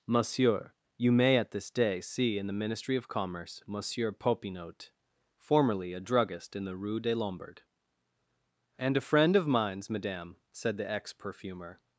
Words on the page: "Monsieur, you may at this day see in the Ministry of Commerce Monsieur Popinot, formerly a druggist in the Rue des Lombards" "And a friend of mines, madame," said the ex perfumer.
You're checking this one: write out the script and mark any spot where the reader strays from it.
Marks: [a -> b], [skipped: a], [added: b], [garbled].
"Monsieur, you may at this day see in the Ministry of Commerce Monsieur Popinot, formerly a druggist in the Rue des Lombards" "And a friend of mines, madame," said the ex perfumer.